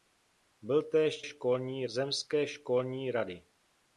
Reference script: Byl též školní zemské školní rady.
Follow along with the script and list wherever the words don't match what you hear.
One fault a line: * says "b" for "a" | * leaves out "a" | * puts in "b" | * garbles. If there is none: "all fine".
all fine